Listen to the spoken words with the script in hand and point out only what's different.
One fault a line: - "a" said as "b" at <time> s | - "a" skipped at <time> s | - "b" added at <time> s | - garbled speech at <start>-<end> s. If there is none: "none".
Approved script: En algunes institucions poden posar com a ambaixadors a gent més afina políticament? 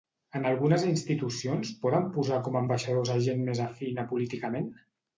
none